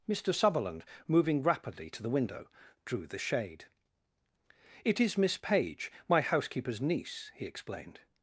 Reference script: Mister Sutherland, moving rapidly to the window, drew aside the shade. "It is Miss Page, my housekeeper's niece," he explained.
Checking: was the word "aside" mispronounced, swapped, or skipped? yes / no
yes